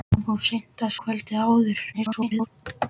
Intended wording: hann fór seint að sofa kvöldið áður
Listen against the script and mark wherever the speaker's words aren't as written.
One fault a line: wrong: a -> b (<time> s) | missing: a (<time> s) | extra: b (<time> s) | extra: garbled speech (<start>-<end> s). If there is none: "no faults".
missing: sofa (0.9 s)
extra: garbled speech (1.9-2.5 s)